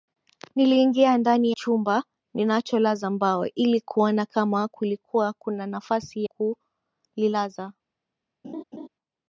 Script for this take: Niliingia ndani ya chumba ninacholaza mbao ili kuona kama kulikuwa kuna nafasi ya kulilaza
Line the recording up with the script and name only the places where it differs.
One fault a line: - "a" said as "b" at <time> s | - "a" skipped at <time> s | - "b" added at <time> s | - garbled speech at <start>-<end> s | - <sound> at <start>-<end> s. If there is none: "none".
- "ya" skipped at 1.5 s
- "ya" skipped at 6.2 s
- laugh at 8.4-8.9 s